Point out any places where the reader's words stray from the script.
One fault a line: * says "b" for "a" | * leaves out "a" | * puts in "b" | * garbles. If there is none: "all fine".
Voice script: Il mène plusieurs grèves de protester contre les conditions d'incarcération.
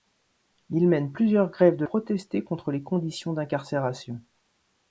all fine